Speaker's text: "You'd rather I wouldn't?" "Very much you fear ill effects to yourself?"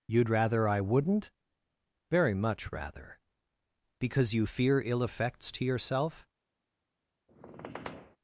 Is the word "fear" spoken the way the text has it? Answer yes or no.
yes